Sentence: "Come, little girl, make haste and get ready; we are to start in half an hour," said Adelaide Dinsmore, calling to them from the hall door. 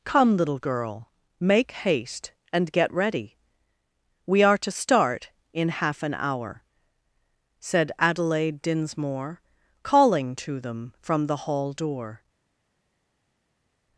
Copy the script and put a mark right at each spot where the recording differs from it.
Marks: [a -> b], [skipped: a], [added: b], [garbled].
"Come, little girl, make haste and get ready; we are to start in half an hour," said Adelaide Dinsmore, calling to them from the hall door.